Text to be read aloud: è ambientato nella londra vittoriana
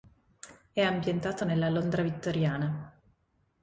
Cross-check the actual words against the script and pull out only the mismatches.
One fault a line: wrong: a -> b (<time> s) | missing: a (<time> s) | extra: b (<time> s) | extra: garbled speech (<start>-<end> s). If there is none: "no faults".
no faults